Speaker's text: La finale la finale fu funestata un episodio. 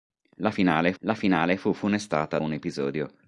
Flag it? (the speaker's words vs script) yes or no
no